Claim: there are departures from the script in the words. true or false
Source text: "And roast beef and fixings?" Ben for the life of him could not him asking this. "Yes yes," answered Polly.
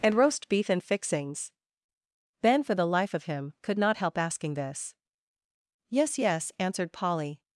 true